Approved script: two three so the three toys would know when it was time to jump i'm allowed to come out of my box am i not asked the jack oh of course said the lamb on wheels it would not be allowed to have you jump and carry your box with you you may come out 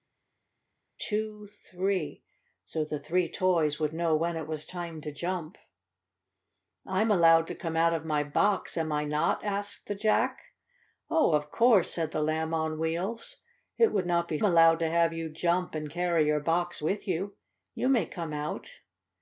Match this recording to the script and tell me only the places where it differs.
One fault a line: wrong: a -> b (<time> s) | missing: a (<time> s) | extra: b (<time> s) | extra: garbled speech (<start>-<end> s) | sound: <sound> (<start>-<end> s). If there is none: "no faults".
no faults